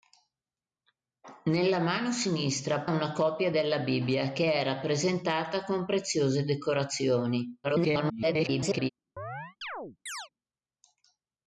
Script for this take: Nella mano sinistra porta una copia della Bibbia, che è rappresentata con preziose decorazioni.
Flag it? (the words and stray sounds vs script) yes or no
yes